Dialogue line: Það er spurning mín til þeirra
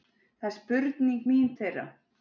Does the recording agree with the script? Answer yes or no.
no